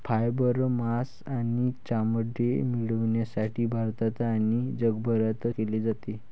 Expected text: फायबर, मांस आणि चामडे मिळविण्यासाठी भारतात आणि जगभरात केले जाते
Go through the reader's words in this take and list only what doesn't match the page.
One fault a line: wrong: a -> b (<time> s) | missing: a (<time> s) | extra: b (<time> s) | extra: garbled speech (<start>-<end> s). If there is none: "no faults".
no faults